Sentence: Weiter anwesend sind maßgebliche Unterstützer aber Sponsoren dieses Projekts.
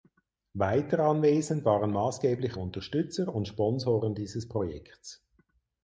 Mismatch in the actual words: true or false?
true